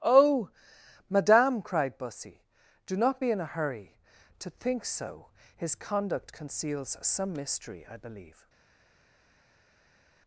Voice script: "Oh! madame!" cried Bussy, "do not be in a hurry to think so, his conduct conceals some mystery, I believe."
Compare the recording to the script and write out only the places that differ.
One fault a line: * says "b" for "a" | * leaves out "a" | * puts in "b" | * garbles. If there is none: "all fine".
all fine